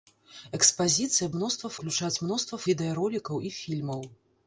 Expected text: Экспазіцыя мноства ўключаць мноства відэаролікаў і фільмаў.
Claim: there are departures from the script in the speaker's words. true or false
false